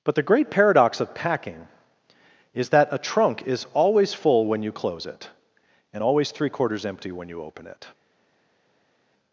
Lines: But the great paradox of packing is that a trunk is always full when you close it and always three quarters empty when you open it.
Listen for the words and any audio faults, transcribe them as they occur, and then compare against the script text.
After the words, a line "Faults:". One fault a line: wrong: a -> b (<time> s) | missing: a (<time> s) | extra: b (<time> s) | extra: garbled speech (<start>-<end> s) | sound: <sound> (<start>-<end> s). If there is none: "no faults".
But the great paradox of packing is that a trunk is always full when you close it and always three quarters empty when you open it.
Faults:
no faults